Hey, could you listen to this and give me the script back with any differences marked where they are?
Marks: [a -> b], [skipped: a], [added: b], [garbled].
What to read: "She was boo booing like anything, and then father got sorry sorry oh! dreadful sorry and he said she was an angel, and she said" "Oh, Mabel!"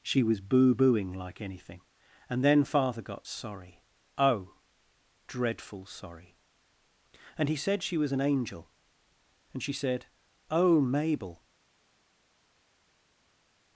"She was boo booing like anything, and then father got sorry [skipped: sorry] oh! dreadful sorry and he said she was an angel, and she said" "Oh, Mabel!"